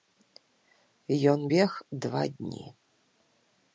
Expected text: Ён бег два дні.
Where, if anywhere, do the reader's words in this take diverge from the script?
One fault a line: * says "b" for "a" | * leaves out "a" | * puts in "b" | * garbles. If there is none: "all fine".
all fine